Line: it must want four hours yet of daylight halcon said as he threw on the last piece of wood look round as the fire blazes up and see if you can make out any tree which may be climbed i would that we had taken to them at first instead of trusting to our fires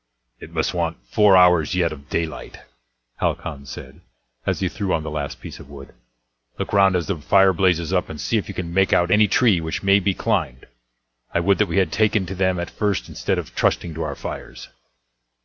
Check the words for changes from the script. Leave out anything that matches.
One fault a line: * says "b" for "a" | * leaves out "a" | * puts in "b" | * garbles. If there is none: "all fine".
all fine